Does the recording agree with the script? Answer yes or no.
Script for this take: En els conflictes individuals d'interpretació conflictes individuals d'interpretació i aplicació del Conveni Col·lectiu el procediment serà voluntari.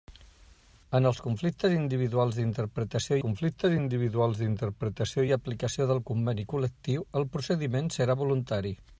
yes